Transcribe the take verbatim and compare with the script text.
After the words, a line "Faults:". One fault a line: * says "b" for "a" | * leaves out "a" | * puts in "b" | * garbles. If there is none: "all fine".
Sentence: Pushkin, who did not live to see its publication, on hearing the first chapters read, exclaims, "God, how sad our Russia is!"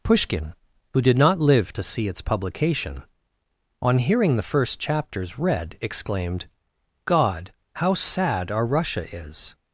Pushkin, who did not live to see its publication, on hearing the first chapters read, exclaimed, "God, how sad our Russia is!"
Faults:
* says "exclaimed" for "exclaims"